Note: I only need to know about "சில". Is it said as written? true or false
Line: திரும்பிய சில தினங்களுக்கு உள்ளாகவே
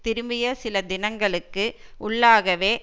true